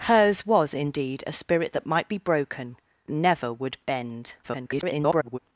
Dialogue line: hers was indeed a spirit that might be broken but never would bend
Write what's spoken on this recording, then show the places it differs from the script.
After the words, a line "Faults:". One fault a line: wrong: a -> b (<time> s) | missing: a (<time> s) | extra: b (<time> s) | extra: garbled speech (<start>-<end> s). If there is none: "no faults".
hers was indeed a spirit that might be broken never would bend [garbled]
Faults:
missing: but (2.8 s)
extra: garbled speech (4.4-5.4 s)